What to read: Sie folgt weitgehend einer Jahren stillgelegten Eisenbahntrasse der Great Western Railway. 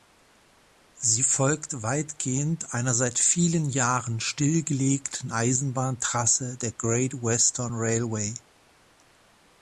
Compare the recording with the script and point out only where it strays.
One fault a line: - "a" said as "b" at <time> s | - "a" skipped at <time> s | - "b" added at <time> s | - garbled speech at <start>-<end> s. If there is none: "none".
- "seit vielen" added at 3.0 s